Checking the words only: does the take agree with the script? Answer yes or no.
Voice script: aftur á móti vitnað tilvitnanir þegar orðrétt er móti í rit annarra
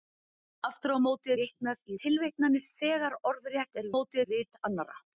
yes